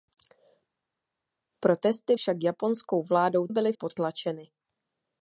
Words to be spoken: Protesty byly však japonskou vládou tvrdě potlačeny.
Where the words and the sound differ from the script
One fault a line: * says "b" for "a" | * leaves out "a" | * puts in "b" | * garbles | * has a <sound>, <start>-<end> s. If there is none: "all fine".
* leaves out "byly"
* says "byly" for "tvrdě"